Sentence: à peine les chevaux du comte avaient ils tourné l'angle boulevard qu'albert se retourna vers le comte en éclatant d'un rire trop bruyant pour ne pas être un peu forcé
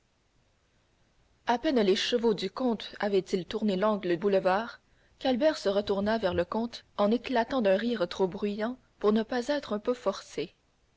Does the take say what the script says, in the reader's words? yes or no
yes